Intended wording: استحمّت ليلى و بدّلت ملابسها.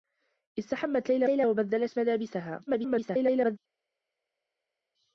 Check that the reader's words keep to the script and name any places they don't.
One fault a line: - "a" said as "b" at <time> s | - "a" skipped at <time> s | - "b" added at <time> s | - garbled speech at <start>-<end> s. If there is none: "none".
- "ليلى" added at 1.3 s
- garbled speech at 2.7-3.6 s